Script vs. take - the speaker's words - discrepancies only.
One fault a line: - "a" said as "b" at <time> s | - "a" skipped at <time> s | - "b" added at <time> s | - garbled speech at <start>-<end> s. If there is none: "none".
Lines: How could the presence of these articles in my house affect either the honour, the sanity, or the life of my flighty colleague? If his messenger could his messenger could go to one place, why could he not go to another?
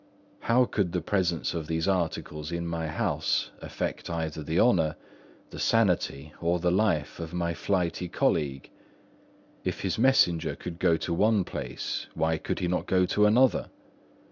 - "his messenger could" skipped at 10.8 s